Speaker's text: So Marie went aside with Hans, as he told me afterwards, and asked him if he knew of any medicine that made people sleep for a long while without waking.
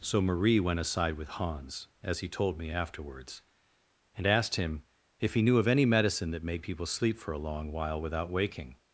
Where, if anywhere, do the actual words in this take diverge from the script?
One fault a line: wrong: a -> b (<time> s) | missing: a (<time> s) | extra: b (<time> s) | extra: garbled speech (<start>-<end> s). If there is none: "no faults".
no faults